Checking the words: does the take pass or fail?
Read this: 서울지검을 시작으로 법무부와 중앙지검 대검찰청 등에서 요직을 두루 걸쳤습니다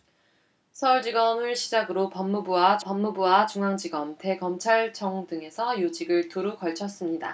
fail